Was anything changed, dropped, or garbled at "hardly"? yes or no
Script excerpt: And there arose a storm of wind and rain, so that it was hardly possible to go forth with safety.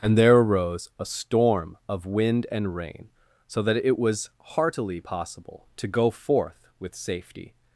yes